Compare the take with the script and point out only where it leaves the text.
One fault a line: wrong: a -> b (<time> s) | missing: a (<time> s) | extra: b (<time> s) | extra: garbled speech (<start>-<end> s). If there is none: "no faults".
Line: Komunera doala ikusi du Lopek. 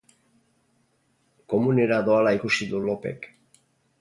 no faults